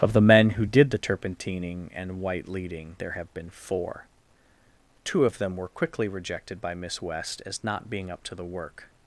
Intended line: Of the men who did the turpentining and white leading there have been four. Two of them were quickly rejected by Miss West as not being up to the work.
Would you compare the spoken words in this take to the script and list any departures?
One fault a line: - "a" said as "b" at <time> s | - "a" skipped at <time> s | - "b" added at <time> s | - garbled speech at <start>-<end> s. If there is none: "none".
none